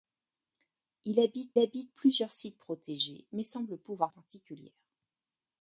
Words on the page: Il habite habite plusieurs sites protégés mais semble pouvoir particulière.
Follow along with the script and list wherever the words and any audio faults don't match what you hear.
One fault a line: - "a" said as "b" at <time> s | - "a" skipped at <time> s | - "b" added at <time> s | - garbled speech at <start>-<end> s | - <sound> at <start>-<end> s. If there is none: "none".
none